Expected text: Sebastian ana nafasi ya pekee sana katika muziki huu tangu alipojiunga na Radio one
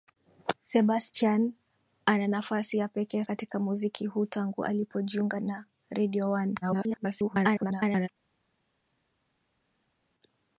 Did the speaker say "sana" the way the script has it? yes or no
no